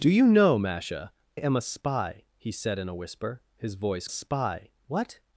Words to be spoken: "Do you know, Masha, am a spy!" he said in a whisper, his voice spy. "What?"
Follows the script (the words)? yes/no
yes